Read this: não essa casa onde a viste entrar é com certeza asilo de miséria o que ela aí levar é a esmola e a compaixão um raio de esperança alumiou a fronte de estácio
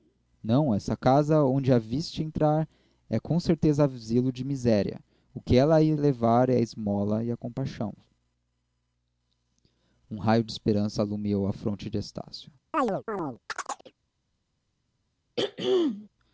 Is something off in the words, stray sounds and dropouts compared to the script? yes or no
yes